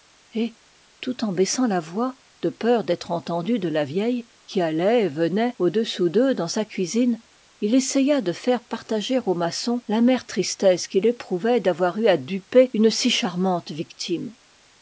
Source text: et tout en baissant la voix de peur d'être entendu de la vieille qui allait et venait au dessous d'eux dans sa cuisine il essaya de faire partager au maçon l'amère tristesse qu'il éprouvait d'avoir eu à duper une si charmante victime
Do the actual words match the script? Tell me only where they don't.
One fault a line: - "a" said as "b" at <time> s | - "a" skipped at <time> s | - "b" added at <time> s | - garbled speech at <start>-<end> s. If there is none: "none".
none